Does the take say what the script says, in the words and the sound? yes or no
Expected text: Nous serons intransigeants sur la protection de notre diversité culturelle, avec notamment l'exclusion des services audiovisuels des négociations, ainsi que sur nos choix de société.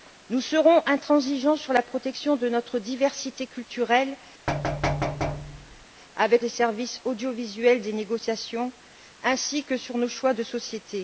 no